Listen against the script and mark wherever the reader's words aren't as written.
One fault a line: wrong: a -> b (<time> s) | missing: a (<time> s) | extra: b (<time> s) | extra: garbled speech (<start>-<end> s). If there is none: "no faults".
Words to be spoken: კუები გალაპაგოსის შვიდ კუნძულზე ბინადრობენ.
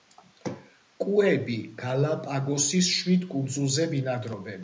no faults